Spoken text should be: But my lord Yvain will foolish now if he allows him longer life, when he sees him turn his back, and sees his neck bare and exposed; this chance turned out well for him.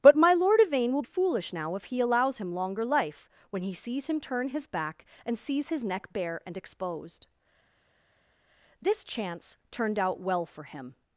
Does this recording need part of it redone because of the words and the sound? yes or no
no